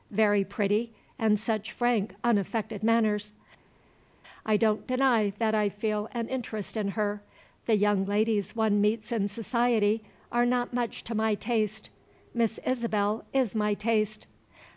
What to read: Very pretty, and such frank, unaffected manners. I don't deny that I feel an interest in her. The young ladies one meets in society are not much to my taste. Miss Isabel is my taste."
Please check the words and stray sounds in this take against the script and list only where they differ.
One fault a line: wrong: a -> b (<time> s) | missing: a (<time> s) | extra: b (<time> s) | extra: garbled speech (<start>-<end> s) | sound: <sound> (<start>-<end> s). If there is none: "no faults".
no faults